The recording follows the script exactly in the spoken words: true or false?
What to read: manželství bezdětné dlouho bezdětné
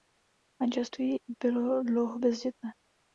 false